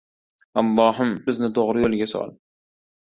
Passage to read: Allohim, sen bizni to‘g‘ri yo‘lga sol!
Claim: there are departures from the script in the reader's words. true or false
true